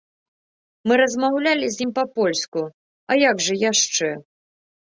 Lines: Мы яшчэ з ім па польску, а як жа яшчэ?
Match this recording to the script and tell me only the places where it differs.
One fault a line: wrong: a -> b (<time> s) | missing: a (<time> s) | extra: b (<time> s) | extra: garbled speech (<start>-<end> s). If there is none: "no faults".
wrong: яшчэ -> размаўлялі (1.0 s)